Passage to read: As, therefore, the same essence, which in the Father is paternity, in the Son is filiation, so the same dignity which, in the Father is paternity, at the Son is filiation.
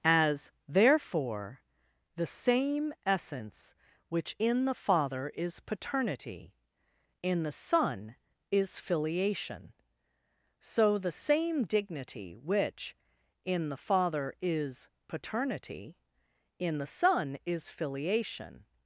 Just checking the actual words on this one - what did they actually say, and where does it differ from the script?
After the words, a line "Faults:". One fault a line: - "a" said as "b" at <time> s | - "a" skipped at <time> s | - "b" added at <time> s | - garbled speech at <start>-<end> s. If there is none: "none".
As, therefore, the same essence, which in the Father is paternity, in the Son is filiation, so the same dignity which, in the Father is paternity, in the Son is filiation.
Faults:
- "at" said as "in" at 16.6 s